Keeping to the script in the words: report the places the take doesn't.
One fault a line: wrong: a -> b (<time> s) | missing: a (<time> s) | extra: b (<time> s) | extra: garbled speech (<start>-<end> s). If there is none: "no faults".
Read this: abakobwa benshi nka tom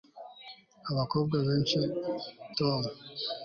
missing: nka (1.8 s)